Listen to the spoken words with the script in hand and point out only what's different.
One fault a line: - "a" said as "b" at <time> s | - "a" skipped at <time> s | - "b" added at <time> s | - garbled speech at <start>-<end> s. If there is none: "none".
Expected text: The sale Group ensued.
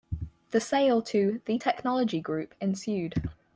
- "to The Technology" added at 1.0 s